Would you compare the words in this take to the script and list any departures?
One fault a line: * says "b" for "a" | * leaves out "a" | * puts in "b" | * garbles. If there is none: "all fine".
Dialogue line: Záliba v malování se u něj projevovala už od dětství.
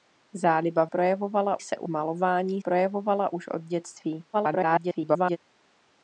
* says "projevovala" for "malování"
* says "malování" for "něj"
* garbles